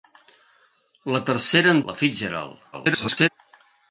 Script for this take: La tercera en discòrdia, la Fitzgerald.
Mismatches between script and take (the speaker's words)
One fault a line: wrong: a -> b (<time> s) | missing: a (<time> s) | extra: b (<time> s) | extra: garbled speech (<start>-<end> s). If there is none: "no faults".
missing: discòrdia (1.8 s)
extra: garbled speech (2.7-3.3 s)